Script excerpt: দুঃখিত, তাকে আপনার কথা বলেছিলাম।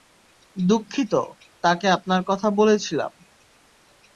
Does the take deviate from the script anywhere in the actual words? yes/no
no